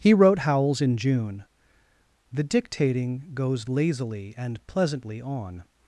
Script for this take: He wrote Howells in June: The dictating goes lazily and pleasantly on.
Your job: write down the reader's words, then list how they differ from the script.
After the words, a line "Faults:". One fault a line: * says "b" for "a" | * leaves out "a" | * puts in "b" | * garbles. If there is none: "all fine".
He wrote Howells in June: The dictating goes lazily and pleasantly on.
Faults:
all fine